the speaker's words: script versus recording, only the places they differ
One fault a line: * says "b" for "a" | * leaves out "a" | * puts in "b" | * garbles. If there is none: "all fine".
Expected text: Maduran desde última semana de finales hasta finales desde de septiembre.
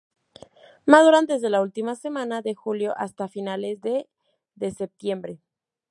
* puts in "la"
* says "julio" for "finales"
* says "de" for "desde"